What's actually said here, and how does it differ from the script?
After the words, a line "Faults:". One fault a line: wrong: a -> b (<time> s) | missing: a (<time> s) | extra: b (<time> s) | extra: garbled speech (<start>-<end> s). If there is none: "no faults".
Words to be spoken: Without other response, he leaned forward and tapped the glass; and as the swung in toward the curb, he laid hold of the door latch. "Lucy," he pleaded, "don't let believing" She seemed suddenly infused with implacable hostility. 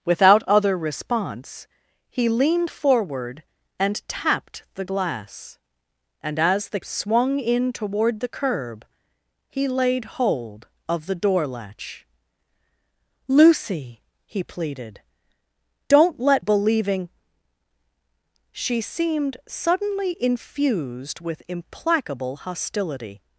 Without other response, he leaned forward and tapped the glass; and as the swung in toward the curb, he laid hold of the door latch. "Lucy," he pleaded, "don't let believing" She seemed suddenly infused with implacable hostility.
Faults:
no faults